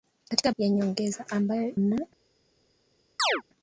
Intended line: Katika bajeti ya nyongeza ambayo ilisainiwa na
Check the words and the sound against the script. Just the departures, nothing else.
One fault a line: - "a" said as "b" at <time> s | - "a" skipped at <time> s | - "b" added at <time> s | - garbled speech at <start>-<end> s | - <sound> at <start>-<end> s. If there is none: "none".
- "bajeti" skipped at 0.5 s
- "ilisainiwa" skipped at 1.8 s
- chirp at 3.2-3.4 s